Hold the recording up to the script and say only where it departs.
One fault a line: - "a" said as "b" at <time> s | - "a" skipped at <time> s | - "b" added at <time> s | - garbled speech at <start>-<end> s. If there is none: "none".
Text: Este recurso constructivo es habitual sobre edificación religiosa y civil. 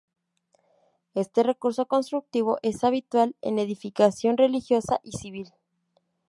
- "sobre" said as "en" at 3.4 s